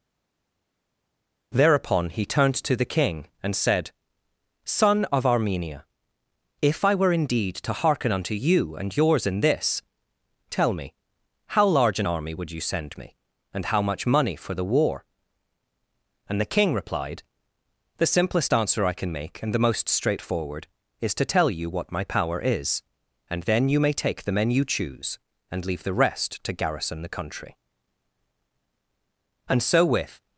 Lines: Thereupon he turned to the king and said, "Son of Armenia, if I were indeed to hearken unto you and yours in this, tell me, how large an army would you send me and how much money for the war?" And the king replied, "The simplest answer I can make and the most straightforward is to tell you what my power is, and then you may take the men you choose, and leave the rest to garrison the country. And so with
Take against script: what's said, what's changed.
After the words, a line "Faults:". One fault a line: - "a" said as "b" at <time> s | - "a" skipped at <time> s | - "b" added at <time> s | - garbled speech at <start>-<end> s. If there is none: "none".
Thereupon he turned to the king and said, "Son of Armenia, if I were indeed to hearken unto you and yours in this, tell me, how large an army would you send me and how much money for the war?" And the king replied, "The simplest answer I can make and the most straightforward is to tell you what my power is, and then you may take the men you choose, and leave the rest to garrison the country. And so with
Faults:
none